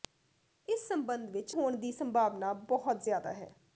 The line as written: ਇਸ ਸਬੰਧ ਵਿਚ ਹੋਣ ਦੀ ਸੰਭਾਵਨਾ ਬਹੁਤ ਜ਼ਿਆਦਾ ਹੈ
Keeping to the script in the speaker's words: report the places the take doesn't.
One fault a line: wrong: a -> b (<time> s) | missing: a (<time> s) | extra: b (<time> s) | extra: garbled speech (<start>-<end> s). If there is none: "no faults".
no faults